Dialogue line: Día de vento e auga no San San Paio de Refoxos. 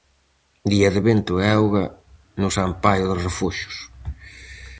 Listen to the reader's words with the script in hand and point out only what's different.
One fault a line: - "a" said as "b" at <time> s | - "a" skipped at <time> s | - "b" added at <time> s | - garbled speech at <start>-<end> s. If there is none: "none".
- "San" skipped at 2.7 s